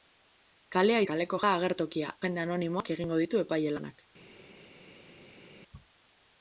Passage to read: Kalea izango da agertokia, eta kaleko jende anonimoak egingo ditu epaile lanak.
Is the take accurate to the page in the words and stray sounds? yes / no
no